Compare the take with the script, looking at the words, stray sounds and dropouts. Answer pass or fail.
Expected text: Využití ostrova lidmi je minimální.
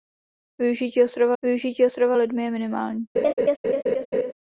fail